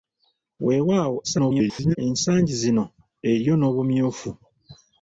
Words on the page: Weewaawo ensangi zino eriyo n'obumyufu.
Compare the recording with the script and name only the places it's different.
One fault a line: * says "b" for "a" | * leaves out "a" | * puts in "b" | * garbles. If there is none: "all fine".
* garbles